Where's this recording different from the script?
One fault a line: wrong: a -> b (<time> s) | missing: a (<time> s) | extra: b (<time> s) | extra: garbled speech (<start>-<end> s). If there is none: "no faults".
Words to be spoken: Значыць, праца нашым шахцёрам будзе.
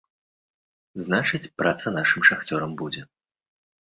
no faults